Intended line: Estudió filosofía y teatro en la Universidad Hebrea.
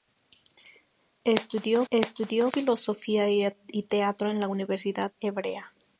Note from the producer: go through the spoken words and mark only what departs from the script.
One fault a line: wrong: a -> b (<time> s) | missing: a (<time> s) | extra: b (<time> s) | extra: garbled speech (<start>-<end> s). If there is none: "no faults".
extra: estudió (1.9 s)